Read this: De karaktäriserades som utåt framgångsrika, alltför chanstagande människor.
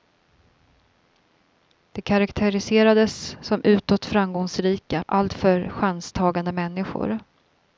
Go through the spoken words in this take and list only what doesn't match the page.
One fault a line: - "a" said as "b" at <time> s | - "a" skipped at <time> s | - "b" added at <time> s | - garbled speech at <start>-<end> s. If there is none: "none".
none